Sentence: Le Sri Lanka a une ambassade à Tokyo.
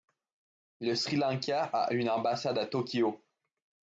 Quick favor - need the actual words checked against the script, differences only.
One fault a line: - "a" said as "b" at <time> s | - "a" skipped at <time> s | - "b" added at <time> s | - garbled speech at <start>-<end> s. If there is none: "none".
none